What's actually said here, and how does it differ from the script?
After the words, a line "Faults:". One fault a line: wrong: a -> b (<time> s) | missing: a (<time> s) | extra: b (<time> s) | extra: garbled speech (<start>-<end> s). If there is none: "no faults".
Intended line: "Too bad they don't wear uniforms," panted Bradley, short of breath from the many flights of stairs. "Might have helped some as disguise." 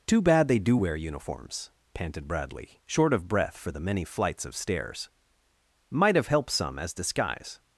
"Too bad they do wear uniforms," panted Bradley, short of breath for the many flights of stairs. "Might have helped some as disguise."
Faults:
wrong: don't -> do (0.6 s)
wrong: from -> for (3.6 s)